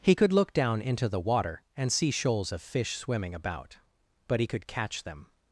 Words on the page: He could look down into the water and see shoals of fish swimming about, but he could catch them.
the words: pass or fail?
pass